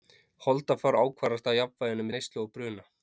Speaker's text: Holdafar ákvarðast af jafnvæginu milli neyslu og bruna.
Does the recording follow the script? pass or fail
fail